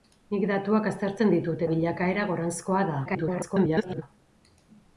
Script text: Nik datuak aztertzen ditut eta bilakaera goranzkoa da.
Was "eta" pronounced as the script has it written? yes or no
no